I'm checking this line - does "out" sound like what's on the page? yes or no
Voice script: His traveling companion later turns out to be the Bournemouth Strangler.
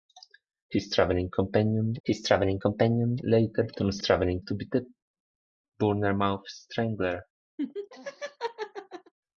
no